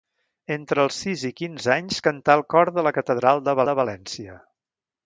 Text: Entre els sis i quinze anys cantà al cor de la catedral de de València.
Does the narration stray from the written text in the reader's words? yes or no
no